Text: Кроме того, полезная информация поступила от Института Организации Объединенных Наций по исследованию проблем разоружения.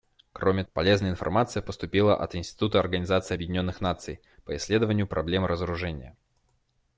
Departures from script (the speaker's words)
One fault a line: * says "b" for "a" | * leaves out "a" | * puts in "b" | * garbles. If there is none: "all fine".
* leaves out "того"